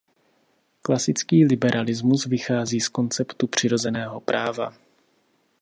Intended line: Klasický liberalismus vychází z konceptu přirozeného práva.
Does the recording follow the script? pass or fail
pass